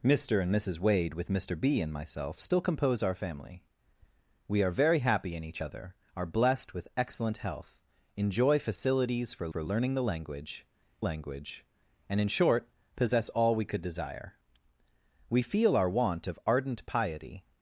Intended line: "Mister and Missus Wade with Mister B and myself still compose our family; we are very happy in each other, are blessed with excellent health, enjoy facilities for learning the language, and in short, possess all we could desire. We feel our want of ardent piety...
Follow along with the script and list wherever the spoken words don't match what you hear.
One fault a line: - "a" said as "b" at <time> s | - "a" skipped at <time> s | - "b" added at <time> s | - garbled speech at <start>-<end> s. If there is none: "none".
- "for" added at 9.5 s
- "language" added at 11.0 s